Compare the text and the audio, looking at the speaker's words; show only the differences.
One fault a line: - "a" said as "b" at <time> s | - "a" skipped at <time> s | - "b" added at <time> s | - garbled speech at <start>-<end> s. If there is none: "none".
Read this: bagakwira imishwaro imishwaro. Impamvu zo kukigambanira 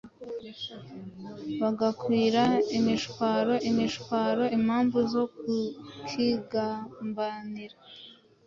none